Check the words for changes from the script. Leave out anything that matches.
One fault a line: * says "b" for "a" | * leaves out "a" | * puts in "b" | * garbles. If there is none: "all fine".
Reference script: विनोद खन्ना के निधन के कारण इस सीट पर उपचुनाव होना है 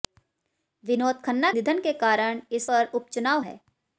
* leaves out "के"
* leaves out "सीट"
* leaves out "होना"